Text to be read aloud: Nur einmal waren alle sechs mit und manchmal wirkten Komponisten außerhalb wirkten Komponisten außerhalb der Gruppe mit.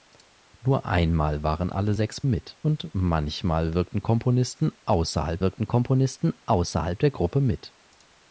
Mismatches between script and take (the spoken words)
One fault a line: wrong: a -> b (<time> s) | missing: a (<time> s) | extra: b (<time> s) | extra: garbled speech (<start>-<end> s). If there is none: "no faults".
no faults